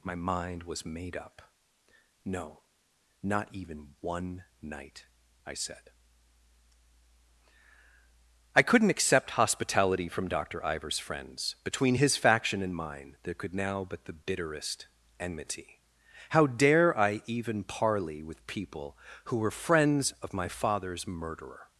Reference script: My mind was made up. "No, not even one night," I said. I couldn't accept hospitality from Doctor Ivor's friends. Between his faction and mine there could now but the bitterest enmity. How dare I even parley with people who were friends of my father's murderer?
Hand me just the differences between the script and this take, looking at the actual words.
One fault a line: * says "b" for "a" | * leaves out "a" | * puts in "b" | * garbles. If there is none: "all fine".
all fine